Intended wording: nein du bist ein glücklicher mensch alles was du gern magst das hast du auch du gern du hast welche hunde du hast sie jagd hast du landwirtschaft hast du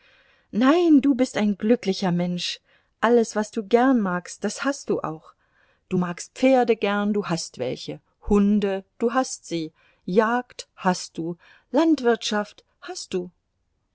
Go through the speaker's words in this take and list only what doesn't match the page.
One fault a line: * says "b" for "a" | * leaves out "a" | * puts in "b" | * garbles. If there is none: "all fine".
* puts in "magst pferde"